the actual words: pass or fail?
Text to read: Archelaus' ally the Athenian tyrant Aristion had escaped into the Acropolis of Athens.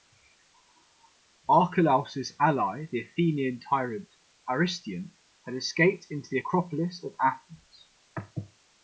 pass